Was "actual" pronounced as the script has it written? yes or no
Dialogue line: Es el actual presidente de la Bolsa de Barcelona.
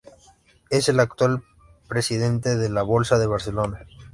yes